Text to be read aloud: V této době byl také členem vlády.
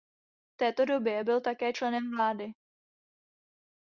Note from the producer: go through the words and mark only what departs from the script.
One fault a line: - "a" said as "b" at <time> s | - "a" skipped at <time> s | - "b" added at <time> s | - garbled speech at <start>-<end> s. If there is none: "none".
none